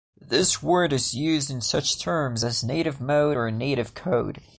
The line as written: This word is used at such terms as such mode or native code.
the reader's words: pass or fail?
fail